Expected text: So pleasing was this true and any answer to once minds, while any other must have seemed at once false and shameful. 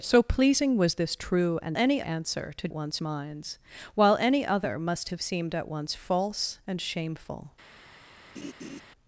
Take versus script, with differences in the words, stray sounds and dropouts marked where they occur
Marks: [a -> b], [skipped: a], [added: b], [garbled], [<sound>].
So pleasing was this true and any answer to once minds, while any other must have seemed at once false and shameful. [laugh]